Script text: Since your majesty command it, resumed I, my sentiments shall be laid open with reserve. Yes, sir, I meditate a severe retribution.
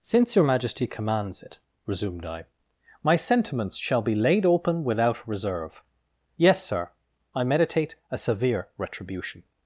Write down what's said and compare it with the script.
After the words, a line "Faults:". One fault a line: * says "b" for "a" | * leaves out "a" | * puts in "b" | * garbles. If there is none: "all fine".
Since your majesty commands it, resumed I, my sentiments shall be laid open without reserve. Yes, sir, I meditate a severe retribution.
Faults:
* says "commands" for "command"
* says "without" for "with"